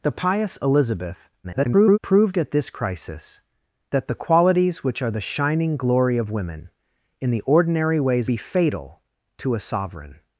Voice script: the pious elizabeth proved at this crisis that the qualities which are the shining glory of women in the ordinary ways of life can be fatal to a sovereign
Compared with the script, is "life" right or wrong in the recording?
wrong